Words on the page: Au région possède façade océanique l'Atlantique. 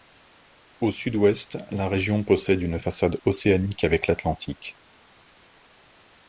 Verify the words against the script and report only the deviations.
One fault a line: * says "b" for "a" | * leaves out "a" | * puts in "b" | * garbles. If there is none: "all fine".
* puts in "sud ouest la"
* puts in "une"
* puts in "avec"